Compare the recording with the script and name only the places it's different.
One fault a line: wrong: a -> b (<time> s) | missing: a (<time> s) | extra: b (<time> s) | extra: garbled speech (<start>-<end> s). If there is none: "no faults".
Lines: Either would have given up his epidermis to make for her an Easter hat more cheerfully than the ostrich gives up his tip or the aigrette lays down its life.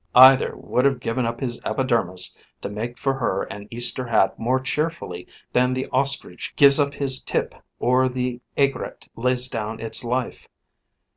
no faults